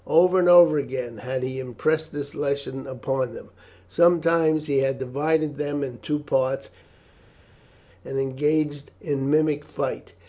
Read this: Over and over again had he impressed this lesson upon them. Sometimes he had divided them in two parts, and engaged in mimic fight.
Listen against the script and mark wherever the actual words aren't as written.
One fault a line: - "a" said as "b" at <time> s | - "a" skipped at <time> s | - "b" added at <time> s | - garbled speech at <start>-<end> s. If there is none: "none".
none